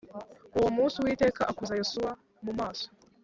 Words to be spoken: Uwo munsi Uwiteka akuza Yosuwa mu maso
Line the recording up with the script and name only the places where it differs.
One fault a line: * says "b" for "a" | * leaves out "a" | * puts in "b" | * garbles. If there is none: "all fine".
all fine